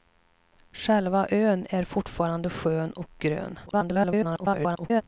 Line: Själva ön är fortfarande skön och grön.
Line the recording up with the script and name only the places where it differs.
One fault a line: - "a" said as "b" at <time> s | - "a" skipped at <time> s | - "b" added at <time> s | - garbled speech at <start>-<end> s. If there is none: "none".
- garbled speech at 3.7-5.0 s